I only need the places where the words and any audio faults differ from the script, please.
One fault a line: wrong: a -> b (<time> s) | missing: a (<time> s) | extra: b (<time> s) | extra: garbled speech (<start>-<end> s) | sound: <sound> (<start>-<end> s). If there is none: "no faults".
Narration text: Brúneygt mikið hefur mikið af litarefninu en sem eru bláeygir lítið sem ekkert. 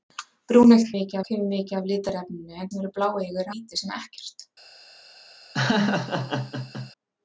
sound: laugh (5.5-6.9 s)